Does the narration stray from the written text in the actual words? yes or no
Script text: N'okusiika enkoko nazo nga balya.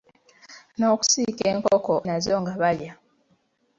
no